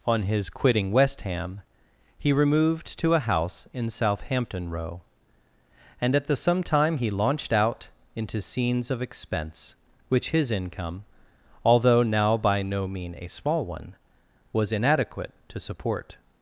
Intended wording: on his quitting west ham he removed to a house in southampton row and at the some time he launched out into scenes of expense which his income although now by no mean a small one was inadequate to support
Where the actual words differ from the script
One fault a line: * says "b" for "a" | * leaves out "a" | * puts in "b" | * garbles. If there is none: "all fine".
all fine